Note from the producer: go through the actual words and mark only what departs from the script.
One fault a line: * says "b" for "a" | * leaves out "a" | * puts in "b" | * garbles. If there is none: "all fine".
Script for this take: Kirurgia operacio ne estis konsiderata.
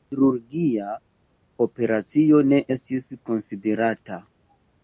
all fine